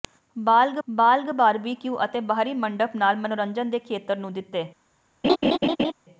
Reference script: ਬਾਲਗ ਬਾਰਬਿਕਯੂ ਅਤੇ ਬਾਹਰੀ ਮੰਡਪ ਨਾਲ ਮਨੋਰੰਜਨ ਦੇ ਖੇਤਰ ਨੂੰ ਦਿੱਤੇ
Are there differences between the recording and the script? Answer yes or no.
yes